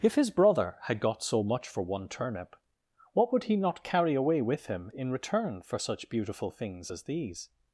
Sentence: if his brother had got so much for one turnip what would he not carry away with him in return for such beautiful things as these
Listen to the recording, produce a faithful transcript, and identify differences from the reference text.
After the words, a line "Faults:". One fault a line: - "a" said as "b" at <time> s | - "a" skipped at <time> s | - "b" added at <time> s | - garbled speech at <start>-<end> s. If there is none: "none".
if his brother had got so much for one turnip what would he not carry away with him in return for such beautiful things as these
Faults:
none